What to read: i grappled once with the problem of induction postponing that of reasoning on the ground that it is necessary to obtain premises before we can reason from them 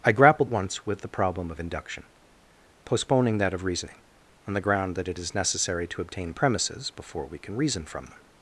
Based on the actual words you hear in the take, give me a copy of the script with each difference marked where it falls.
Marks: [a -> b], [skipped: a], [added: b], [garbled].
i grappled once with the problem of induction postponing that of reasoning on the ground that it is necessary to obtain premises before we can reason from them